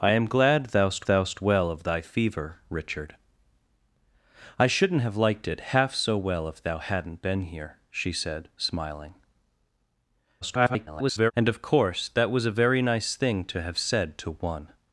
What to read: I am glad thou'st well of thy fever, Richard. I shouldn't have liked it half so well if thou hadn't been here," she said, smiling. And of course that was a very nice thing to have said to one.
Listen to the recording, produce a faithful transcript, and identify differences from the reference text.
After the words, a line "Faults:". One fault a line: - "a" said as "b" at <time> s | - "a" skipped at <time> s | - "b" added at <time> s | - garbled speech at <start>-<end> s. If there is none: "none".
I am glad thou'st thou'st well of thy fever, Richard. I shouldn't have liked it half so well if thou hadn't been here," she said, smiling. [garbled] And of course that was a very nice thing to have said to one.
Faults:
- "thou'st" added at 1.1 s
- garbled speech at 10.4-11.3 s